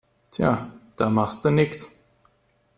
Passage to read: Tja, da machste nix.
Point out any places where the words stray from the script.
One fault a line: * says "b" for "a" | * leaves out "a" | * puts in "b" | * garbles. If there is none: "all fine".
all fine